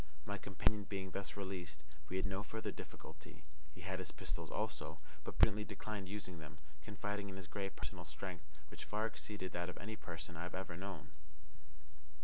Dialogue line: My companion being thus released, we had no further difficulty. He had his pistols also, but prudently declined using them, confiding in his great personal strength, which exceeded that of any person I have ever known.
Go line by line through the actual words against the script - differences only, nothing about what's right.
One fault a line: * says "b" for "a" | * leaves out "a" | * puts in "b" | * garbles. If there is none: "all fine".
* puts in "far"